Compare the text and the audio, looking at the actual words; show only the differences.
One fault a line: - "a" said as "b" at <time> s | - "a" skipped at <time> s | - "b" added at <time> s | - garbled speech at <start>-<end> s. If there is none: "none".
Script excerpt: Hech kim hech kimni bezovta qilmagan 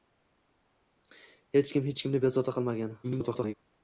- garbled speech at 3.0-3.5 s